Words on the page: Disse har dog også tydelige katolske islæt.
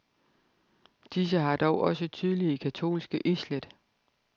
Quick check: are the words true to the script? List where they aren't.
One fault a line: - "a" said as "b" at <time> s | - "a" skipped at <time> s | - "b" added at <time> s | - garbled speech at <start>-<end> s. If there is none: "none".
none